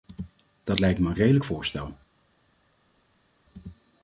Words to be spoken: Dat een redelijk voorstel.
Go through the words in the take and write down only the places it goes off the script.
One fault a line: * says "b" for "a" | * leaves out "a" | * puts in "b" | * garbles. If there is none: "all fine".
* puts in "lijkt me"